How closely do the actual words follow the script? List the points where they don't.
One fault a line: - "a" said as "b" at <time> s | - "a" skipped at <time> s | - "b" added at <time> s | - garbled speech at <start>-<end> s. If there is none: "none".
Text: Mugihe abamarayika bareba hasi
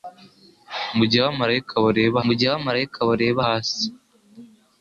- "mugihe abamarayika bareba" added at 2.3 s